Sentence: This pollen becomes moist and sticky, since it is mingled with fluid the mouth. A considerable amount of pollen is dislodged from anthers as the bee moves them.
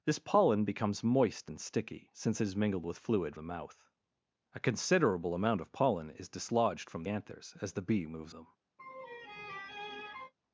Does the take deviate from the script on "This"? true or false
false